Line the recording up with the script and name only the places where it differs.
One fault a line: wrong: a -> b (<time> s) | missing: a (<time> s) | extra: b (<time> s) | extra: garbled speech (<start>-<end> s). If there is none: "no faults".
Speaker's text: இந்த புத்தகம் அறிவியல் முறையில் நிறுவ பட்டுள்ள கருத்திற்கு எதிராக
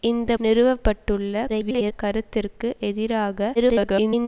missing: புத்தகம் அறிவியல் முறையில் (0.3 s)
extra: garbled speech (1.5-1.9 s)
extra: garbled speech (3.6-4.3 s)